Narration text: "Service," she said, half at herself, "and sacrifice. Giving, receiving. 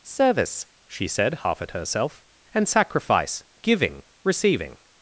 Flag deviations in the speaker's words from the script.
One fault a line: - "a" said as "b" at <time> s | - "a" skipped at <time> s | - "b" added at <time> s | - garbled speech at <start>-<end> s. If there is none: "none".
none